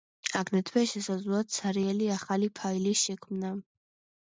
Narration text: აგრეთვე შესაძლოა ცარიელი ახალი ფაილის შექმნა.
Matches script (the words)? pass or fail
pass